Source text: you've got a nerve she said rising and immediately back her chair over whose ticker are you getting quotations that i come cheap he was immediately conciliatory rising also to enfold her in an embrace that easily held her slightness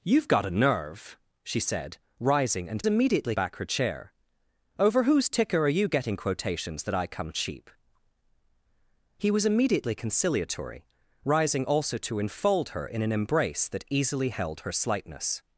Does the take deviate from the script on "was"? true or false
false